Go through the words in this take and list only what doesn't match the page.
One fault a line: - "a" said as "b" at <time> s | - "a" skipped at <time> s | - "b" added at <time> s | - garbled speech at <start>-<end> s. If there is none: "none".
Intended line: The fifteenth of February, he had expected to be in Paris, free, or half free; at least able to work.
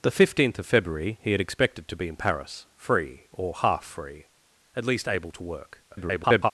- garbled speech at 5.9-6.5 s